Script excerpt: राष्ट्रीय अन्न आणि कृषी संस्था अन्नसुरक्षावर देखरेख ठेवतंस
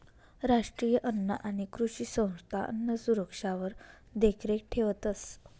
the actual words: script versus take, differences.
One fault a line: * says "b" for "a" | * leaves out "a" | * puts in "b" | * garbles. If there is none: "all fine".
all fine